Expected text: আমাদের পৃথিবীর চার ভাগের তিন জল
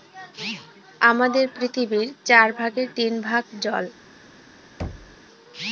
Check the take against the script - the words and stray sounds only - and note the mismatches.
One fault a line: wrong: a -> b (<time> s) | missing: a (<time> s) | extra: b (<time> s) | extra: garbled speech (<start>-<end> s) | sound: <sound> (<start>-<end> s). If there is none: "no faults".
extra: ভাগ (3.2 s)
sound: thud (4.8-5.2 s)